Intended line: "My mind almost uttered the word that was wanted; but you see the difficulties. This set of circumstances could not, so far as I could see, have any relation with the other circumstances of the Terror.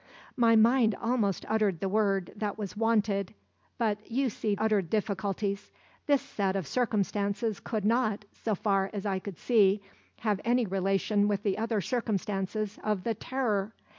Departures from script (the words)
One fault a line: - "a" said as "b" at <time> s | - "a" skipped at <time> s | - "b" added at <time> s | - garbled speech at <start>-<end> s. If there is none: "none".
- "the" said as "uttered" at 4.6 s